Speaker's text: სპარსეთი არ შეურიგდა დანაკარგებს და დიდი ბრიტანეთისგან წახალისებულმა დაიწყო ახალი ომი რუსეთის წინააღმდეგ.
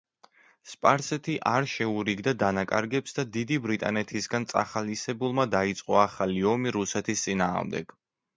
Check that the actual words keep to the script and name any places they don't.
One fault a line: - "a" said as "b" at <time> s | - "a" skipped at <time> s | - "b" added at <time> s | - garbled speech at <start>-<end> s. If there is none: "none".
none